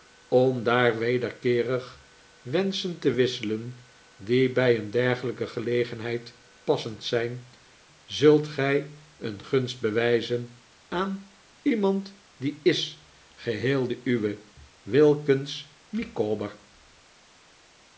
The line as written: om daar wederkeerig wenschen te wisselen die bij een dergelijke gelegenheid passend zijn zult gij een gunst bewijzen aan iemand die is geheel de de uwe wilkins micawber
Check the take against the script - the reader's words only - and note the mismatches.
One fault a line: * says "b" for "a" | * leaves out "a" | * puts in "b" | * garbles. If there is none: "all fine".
* leaves out "de"